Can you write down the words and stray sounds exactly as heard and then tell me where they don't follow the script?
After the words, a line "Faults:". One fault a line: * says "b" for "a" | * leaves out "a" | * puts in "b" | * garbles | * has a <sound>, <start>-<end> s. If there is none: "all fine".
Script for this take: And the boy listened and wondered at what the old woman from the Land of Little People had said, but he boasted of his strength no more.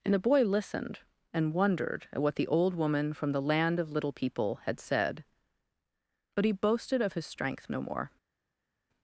And the boy listened and wondered at what the old woman from the Land of Little People had said, but he boasted of his strength no more.
Faults:
all fine